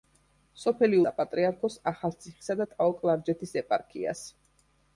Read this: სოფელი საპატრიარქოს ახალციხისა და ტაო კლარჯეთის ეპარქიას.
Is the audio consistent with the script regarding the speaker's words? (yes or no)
yes